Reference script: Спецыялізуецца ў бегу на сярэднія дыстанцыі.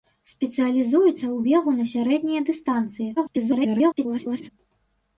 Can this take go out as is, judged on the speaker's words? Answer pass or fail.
fail